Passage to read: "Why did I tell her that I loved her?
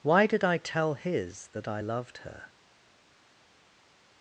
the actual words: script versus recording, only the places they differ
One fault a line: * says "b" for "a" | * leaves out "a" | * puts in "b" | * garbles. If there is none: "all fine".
* says "his" for "her"